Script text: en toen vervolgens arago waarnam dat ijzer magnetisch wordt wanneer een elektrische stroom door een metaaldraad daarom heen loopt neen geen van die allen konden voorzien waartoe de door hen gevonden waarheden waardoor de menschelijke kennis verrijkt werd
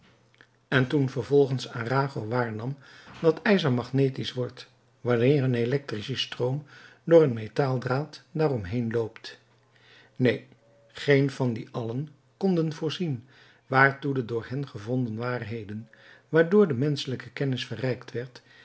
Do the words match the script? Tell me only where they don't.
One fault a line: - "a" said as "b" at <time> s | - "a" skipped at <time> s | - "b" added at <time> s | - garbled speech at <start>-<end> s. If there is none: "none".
none